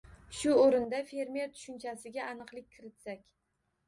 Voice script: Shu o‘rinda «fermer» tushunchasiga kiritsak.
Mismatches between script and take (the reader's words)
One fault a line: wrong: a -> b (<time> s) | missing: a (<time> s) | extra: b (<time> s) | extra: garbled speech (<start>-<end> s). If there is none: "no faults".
extra: aniqlik (2.3 s)